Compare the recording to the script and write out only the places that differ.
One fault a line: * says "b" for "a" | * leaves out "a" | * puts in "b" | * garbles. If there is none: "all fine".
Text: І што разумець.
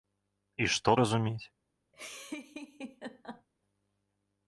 all fine